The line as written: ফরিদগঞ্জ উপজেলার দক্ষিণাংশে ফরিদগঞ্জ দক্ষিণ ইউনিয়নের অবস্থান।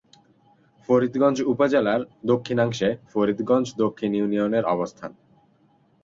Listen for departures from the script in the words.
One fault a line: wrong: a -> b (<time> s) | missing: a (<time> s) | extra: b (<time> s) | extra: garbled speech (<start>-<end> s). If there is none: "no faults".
no faults